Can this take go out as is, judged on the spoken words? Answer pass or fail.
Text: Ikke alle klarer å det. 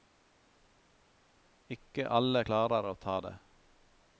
fail